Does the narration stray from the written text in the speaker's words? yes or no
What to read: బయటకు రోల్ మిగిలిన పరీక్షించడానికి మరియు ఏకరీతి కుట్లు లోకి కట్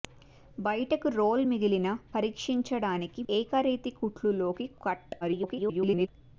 yes